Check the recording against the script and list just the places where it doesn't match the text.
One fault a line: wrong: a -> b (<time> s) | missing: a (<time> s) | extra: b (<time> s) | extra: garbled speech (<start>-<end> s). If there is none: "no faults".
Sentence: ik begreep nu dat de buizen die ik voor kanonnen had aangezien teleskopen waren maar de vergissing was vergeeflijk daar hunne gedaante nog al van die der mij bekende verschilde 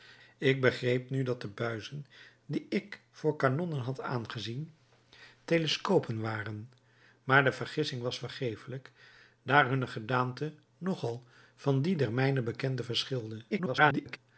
extra: garbled speech (13.5-14.2 s)